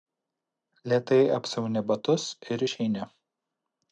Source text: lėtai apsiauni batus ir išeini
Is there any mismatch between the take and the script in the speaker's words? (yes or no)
no